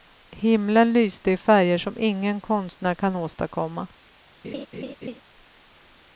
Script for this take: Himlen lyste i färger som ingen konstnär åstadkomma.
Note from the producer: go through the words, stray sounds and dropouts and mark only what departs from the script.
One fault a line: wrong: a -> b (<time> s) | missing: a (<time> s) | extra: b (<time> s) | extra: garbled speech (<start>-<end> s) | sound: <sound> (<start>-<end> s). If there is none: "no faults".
extra: kan (3.0 s)
sound: laugh (4.4-5.2 s)